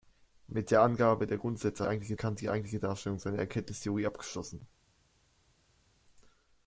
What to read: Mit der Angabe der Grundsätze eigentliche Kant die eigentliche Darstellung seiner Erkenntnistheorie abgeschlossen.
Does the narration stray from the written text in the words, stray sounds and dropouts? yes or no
no